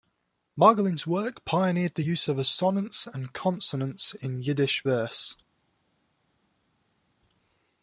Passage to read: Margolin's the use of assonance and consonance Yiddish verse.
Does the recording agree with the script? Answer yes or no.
no